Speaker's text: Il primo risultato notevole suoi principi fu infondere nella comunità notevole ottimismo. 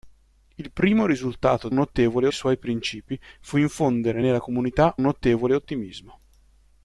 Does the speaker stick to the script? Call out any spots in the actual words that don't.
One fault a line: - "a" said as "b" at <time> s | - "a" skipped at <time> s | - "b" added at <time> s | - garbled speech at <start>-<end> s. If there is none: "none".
none